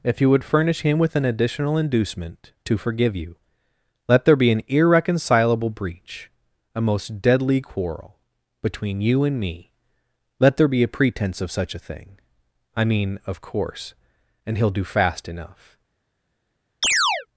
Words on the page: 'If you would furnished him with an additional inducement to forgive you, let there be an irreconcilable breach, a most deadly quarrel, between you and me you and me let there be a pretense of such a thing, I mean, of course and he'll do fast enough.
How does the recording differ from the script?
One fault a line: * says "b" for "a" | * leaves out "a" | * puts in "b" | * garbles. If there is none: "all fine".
* says "furnish" for "furnished"
* leaves out "you and me"